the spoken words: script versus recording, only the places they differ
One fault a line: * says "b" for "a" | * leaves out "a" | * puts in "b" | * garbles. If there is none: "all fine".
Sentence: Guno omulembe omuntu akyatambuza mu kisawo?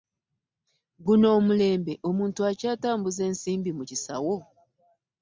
* puts in "ensimbi"